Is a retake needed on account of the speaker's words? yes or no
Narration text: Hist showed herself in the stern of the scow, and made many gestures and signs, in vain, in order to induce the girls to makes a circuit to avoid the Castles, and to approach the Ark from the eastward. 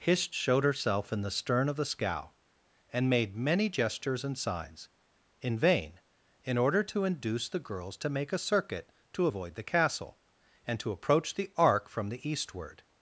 yes